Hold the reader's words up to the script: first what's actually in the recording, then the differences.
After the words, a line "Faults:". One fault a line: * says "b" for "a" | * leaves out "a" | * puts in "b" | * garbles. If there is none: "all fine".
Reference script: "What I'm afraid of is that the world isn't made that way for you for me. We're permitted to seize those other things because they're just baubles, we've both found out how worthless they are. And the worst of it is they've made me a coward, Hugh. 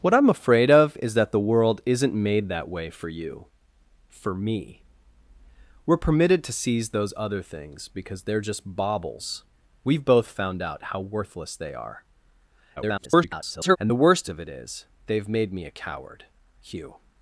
"What I'm afraid of is that the world isn't made that way for you for me. We're permitted to seize those other things because they're just baubles, we've both found out how worthless they are. [garbled] And the worst of it is they've made me a coward, Hugh.
Faults:
* garbles